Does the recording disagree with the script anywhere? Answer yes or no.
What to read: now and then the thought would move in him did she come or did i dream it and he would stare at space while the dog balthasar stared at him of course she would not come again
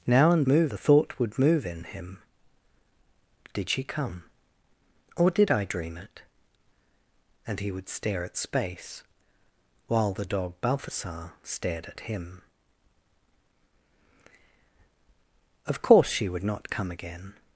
yes